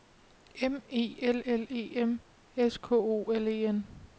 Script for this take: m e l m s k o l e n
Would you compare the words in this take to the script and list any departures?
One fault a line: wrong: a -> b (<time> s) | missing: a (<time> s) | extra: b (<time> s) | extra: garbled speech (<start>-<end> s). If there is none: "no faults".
extra: l e (1.4 s)